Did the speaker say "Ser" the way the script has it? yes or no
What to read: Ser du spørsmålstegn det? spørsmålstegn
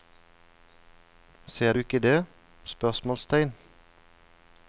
yes